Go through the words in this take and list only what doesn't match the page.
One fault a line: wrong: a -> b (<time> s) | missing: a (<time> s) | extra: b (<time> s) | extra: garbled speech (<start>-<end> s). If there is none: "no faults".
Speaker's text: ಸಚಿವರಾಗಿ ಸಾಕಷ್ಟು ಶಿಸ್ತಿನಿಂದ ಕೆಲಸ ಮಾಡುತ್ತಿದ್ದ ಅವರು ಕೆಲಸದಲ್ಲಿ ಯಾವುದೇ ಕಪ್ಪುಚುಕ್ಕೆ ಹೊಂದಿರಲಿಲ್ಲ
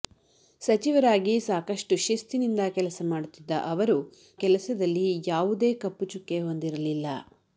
no faults